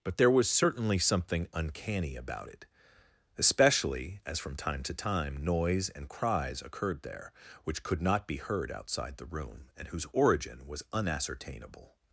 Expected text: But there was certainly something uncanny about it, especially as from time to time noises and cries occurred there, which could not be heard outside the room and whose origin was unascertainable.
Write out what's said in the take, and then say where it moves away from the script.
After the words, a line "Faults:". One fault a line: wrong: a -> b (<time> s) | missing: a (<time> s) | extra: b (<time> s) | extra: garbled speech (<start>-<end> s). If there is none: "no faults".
But there was certainly something uncanny about it, especially as from time to time noise and cries occurred there, which could not be heard outside the room and whose origin was unascertainable.
Faults:
wrong: noises -> noise (5.4 s)